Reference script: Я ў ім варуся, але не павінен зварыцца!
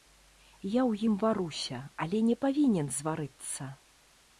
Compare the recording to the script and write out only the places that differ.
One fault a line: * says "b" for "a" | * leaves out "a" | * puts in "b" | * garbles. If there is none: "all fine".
all fine